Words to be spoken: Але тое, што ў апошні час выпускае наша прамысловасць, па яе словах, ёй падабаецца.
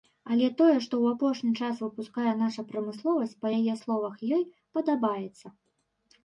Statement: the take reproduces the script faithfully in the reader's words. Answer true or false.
true